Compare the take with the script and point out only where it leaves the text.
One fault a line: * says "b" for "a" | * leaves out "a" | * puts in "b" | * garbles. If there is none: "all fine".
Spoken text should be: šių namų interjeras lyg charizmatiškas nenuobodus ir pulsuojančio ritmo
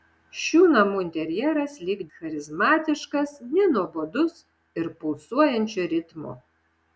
all fine